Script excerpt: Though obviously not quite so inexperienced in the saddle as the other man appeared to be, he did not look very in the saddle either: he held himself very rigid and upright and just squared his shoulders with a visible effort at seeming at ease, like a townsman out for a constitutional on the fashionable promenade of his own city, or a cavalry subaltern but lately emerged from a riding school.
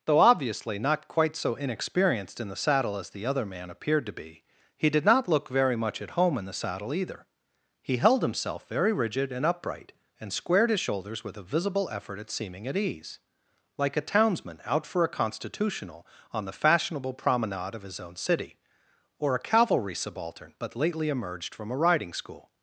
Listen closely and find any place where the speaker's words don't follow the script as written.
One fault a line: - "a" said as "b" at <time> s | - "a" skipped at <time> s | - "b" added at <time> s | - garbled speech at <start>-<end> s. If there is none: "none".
- "much at home" added at 5.8 s
- "just" skipped at 10.3 s